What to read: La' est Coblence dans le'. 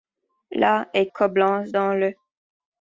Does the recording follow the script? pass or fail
pass